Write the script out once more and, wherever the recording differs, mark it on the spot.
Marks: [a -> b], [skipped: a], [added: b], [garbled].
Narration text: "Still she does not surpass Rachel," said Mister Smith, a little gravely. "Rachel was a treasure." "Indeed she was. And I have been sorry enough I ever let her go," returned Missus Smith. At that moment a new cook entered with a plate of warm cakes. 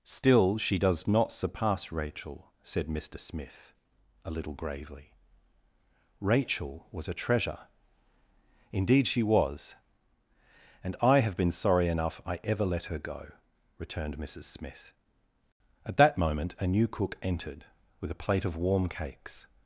"Still she does not surpass Rachel," said Mister Smith, a little gravely. "Rachel was a treasure." "Indeed she was. And I have been sorry enough I ever let her go," returned Missus Smith. At that moment a new cook entered with a plate of warm cakes.